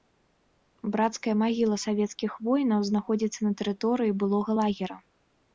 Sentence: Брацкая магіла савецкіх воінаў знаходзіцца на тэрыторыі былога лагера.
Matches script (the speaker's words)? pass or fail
pass